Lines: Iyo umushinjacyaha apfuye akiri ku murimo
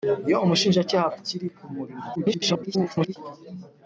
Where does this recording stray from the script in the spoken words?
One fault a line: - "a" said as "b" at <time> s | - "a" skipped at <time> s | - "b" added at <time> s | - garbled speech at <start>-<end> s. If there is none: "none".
- "apfuye" skipped at 1.1 s
- garbled speech at 2.2-3.2 s